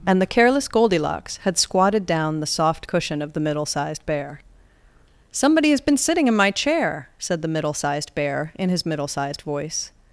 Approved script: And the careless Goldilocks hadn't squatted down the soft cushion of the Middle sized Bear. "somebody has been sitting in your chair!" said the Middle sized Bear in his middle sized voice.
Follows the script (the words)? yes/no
no